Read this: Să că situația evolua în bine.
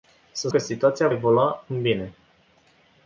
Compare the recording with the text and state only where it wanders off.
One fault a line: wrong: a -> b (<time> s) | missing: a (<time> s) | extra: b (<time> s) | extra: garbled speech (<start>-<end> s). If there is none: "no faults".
no faults